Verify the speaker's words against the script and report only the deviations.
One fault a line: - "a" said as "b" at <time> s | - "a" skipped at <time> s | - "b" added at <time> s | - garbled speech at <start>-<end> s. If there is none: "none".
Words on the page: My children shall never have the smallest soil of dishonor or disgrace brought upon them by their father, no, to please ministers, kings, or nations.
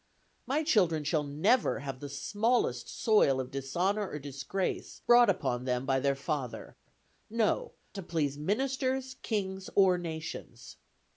none